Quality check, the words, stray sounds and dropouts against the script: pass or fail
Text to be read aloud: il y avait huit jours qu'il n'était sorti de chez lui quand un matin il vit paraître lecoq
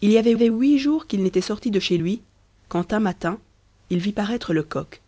fail